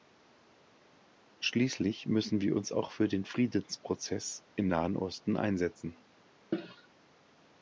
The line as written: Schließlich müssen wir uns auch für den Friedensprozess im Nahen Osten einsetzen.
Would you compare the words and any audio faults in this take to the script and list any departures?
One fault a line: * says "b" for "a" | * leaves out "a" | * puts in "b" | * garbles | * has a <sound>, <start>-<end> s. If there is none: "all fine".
* has a cough, 6.5-6.9 s